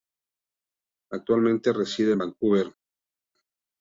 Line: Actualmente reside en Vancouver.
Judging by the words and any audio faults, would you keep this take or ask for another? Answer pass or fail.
pass